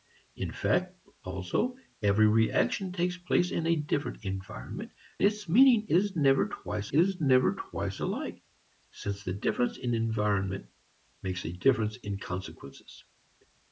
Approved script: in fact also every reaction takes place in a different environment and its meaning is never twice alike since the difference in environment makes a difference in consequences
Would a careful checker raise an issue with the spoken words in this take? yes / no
yes